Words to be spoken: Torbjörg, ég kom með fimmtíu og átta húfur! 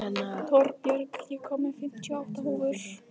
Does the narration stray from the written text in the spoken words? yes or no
no